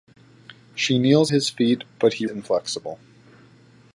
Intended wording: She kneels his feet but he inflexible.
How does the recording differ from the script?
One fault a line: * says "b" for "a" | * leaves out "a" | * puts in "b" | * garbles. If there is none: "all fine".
all fine